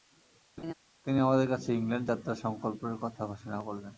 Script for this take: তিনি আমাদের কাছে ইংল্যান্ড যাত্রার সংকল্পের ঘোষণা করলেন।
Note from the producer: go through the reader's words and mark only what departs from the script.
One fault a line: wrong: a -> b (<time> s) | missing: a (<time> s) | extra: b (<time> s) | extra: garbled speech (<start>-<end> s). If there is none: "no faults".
extra: কথা (3.0 s)